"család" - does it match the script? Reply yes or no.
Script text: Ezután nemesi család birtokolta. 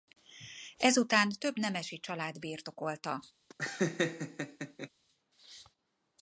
yes